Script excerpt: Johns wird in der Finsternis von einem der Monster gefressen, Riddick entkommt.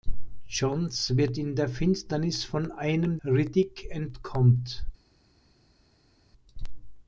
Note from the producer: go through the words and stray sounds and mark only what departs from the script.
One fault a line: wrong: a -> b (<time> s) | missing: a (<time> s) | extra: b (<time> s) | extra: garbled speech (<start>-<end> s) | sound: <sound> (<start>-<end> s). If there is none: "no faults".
missing: der Monster gefressen (3.2 s)